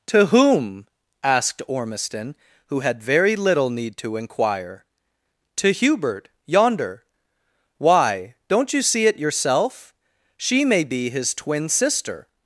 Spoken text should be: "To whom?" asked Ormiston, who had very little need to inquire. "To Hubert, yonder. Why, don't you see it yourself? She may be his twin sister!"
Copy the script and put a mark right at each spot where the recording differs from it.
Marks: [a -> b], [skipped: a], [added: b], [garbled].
"To whom?" asked Ormiston, who had very little need to inquire. "To Hubert, yonder. Why, don't you see it yourself? She may be his twin sister!"